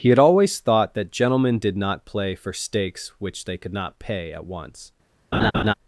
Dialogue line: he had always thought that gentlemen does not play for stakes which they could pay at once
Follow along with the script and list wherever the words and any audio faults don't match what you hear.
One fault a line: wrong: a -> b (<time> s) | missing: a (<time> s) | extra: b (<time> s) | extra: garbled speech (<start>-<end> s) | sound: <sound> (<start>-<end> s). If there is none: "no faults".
wrong: does -> did (1.6 s)
extra: not (3.7 s)
sound: laugh (5.3-5.7 s)